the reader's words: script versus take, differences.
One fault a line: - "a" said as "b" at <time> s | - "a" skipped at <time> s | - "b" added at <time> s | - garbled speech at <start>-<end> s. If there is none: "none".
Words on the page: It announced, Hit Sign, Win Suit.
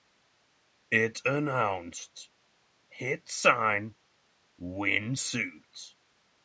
none